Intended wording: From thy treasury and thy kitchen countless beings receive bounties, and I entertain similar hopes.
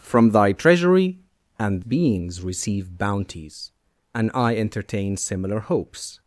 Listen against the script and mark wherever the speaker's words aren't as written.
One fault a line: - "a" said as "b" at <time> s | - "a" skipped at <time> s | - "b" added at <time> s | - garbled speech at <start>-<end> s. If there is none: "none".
- "thy kitchen countless" skipped at 1.9 s